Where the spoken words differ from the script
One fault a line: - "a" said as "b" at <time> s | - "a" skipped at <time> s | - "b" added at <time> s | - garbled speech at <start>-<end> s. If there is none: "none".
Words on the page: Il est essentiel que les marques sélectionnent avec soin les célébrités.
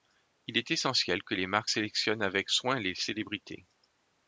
none